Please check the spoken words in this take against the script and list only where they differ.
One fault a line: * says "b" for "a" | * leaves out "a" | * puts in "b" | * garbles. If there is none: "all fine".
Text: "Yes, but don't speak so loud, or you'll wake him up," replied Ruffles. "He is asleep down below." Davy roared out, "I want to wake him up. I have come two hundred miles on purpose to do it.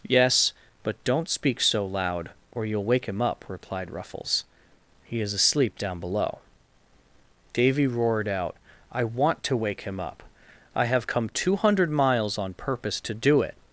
all fine